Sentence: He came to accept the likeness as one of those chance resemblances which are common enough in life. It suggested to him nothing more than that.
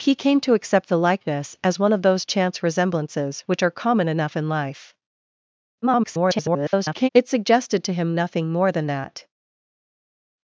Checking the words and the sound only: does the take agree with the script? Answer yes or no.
no